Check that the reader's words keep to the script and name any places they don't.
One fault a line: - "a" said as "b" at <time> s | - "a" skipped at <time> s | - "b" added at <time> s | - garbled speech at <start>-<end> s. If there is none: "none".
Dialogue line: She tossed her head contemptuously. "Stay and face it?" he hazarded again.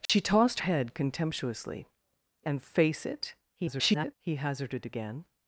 - "her" skipped at 0.6 s
- "Stay" skipped at 1.9 s
- garbled speech at 3.5-4.1 s